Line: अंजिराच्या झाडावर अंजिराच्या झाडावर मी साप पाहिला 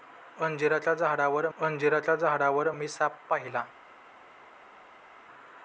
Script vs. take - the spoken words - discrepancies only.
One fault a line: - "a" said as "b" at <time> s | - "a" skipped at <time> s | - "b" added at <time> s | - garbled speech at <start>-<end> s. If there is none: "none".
none